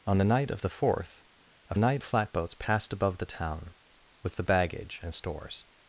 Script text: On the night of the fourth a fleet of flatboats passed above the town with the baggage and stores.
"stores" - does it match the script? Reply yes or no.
yes